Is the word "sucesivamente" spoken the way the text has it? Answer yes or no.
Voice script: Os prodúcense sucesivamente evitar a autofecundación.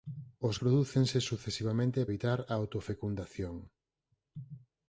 yes